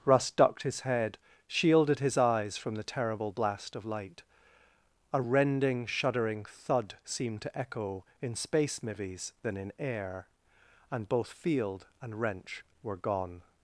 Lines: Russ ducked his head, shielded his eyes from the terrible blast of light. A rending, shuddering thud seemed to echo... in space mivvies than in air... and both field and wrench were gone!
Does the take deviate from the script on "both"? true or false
false